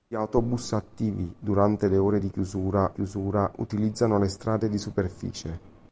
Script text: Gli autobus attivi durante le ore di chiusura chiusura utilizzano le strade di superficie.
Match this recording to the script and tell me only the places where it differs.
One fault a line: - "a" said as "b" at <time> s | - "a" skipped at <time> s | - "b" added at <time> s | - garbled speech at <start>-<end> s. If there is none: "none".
none